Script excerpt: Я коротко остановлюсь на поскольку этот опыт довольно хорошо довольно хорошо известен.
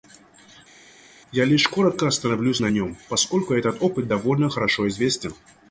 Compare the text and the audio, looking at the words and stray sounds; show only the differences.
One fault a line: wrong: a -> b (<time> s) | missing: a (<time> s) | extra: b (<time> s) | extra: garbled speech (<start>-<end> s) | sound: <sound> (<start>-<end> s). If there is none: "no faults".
extra: лишь (1.5 s)
extra: нем (2.7 s)
missing: довольно хорошо (4.9 s)